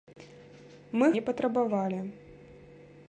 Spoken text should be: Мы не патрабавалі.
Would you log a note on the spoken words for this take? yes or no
no